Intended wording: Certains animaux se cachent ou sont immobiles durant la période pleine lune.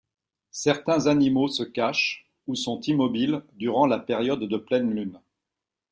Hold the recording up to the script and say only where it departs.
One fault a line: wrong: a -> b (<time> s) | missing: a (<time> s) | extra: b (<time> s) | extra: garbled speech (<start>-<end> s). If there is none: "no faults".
extra: de (4.4 s)